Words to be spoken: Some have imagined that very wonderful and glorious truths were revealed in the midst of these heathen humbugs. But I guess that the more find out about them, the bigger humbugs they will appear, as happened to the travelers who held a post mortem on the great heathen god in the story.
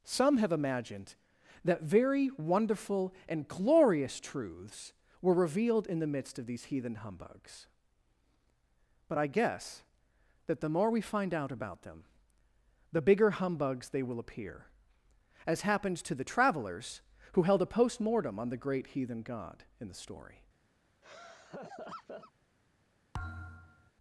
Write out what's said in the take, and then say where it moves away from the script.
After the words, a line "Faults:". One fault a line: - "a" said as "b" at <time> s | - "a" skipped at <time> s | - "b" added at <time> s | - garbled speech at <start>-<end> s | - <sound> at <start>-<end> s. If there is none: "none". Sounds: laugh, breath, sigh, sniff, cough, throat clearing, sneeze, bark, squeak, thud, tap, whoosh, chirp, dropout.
Some have imagined that very wonderful and glorious truths were revealed in the midst of these heathen humbugs. But I guess that the more we find out about them, the bigger humbugs they will appear, as happened to the travelers who held a post mortem on the great heathen god in the story.
Faults:
- "we" added at 10.9 s
- laugh at 21.0-22.3 s
- thud at 23.1-23.9 s